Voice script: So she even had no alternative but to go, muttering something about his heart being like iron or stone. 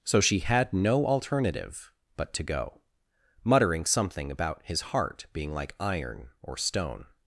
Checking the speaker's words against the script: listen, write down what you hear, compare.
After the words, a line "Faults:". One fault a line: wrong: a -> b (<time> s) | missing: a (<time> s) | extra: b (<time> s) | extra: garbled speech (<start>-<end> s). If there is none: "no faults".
So she had no alternative but to go, muttering something about his heart being like iron or stone.
Faults:
missing: even (0.4 s)